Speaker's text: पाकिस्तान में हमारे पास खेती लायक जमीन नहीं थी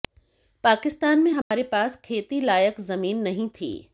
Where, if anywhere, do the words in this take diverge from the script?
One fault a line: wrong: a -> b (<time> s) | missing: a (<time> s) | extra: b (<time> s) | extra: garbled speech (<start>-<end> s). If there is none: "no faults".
no faults